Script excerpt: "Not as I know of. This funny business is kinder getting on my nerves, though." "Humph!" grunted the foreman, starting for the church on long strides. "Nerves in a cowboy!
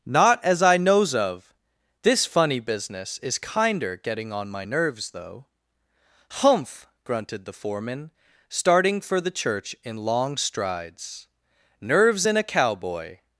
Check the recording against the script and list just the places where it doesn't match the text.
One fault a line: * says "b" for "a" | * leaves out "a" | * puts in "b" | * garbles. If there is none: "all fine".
* says "knows" for "know"
* says "in" for "on"